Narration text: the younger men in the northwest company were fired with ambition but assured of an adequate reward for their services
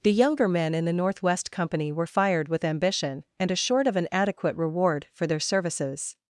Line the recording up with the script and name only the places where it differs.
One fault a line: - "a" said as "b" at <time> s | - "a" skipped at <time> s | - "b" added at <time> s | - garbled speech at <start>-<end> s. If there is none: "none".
- "but" said as "and" at 3.4 s